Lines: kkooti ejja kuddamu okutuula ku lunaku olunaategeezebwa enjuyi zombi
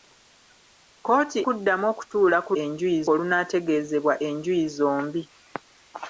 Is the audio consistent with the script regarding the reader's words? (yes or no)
no